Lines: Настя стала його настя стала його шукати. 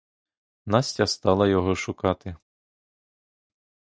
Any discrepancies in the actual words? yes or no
yes